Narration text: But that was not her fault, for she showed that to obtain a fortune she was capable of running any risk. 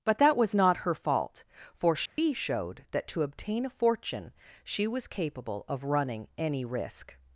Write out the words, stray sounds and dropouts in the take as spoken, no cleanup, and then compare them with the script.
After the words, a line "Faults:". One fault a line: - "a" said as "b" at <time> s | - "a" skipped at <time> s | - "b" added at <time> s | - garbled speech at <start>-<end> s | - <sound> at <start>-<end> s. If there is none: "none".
But that was not her fault, for she showed that to obtain a fortune she was capable of running any risk.
Faults:
- dropout at 2.1-2.2 s